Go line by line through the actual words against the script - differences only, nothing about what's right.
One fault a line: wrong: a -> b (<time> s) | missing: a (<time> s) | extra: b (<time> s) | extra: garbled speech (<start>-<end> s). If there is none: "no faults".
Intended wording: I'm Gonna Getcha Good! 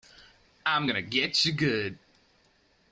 no faults